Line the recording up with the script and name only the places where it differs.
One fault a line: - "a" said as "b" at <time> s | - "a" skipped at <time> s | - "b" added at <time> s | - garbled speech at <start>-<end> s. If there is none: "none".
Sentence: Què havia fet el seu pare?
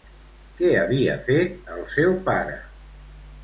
none